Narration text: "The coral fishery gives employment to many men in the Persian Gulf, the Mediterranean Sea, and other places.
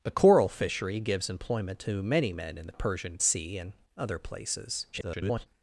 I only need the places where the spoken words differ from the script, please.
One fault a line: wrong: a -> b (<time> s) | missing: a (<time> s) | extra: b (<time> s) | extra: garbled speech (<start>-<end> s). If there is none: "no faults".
missing: Gulf the Mediterranean (3.2 s)
extra: garbled speech (4.9-5.5 s)